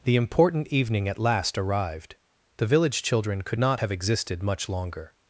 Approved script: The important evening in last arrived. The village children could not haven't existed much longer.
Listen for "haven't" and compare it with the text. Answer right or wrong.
wrong